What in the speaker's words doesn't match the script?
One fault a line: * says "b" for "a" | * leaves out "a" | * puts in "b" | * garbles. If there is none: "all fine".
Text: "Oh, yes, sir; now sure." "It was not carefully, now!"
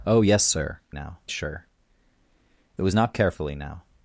all fine